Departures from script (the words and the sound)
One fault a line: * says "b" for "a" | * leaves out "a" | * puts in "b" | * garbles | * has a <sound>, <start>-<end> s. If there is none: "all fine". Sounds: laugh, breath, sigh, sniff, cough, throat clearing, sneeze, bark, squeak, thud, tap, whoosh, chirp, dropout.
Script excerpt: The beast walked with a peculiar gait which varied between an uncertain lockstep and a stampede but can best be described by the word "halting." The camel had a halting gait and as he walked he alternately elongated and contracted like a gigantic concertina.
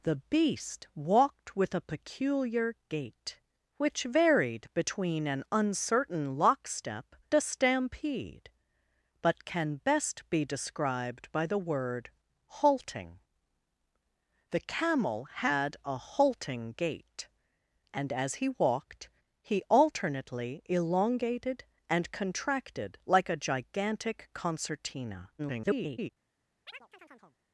* leaves out "and"
* garbles
* has a chirp, 26.7-27.4 s